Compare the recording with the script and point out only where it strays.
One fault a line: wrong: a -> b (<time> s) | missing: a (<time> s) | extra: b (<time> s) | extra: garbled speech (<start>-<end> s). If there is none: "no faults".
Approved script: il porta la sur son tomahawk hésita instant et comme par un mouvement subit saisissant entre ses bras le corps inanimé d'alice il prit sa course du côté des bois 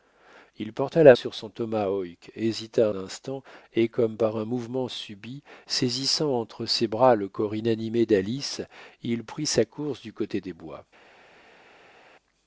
no faults